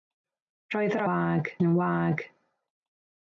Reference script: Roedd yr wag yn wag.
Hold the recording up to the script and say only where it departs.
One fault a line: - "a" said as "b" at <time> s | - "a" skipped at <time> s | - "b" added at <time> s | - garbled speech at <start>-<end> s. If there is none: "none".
none